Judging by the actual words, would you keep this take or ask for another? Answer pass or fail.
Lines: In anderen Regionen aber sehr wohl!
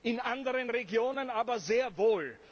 pass